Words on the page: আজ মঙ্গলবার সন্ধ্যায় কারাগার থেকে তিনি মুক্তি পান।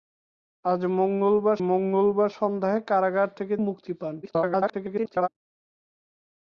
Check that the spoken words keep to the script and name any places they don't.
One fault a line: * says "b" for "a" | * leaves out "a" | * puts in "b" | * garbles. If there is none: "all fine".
* puts in "মঙ্গলবার"
* leaves out "তিনি"
* garbles